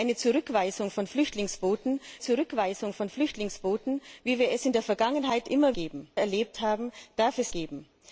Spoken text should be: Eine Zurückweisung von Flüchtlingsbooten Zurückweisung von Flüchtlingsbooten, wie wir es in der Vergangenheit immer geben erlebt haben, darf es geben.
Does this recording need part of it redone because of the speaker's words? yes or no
no